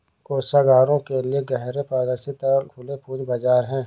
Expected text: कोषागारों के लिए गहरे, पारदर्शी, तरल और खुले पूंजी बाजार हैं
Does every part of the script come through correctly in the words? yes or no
no